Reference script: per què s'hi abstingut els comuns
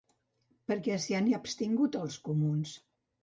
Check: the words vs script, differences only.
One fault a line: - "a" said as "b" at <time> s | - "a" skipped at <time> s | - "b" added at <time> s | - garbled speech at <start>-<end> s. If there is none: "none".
- "han" added at 1.2 s